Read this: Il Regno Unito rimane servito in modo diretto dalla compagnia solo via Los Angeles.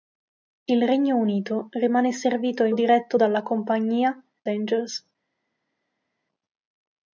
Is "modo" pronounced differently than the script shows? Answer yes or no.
yes